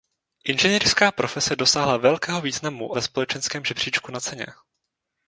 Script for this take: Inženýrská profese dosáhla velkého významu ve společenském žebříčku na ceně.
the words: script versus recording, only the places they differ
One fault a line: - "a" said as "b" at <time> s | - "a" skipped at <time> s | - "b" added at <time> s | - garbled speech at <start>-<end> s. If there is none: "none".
none